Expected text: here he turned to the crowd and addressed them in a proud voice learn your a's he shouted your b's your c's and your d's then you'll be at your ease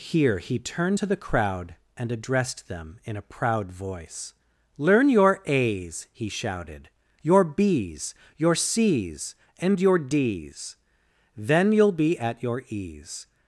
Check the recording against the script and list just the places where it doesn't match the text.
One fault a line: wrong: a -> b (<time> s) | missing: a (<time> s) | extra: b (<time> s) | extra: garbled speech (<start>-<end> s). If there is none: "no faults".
no faults